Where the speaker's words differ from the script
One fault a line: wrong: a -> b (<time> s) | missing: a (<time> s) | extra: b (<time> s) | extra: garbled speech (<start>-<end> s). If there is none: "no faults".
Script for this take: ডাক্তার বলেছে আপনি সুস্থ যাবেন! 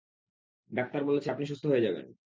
extra: হয়ে (1.7 s)